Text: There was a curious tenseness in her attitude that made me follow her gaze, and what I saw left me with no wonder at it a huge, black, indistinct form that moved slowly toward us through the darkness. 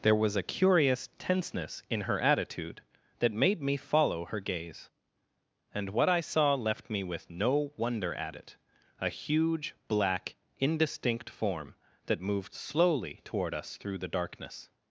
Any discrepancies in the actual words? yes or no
no